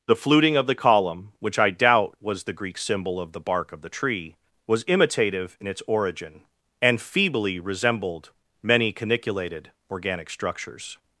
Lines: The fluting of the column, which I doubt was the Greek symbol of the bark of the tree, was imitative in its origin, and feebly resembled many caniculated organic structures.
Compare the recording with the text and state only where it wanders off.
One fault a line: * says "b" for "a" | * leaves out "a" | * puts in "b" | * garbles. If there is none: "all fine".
all fine